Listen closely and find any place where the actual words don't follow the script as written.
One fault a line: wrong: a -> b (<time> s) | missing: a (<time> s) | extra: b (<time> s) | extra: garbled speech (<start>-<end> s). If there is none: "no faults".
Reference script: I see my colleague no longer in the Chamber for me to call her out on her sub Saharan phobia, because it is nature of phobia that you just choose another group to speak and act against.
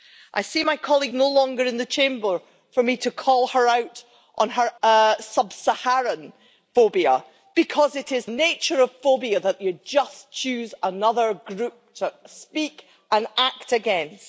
no faults